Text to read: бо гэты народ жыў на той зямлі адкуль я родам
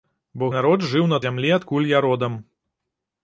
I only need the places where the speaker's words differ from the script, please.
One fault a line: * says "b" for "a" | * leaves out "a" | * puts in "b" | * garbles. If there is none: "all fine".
* leaves out "гэты"
* leaves out "той"